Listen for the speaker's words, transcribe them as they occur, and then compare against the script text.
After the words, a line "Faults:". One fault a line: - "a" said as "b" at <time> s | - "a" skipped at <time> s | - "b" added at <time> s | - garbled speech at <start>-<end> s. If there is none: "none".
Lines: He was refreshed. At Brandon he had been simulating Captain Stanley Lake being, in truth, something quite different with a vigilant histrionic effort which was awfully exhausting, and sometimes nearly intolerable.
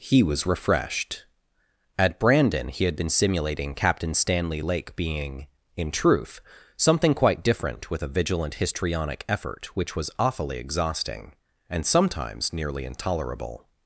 He was refreshed. At Brandon he had been simulating Captain Stanley Lake being, in truth, something quite different with a vigilant histrionic effort which was awfully exhausting, and sometimes nearly intolerable.
Faults:
none